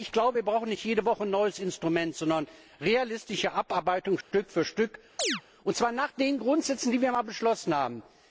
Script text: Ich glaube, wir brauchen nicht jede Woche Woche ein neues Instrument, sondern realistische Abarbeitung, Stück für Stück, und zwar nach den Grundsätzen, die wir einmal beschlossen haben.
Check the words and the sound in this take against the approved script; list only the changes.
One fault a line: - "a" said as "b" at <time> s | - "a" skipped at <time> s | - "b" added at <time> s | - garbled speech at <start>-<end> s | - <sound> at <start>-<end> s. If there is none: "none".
- "Woche" skipped at 1.2 s
- dropout at 4.2-4.3 s
- chirp at 5.2-5.4 s